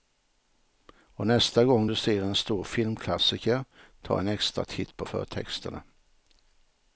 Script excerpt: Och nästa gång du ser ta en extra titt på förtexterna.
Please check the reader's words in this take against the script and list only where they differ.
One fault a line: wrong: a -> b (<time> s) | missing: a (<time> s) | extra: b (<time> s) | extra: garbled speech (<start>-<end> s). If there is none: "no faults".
extra: en stor filmklassiker (2.2 s)